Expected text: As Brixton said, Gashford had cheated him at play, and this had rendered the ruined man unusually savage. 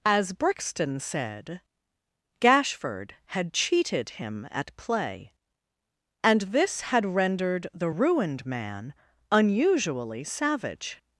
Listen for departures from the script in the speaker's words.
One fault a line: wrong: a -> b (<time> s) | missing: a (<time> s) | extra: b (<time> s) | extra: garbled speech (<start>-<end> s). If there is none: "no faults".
no faults